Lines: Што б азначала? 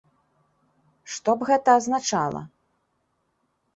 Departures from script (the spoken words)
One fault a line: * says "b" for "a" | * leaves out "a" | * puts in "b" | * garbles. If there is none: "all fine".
* puts in "гэта"